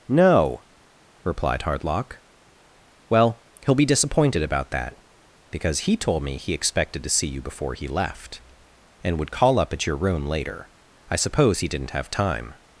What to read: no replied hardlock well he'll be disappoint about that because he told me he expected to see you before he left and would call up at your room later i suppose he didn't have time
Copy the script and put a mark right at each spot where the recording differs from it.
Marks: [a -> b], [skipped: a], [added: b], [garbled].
no replied hardlock well he'll be [disappoint -> disappointed] about that because he told me he expected to see you before he left and would call up at your room later i suppose he didn't have time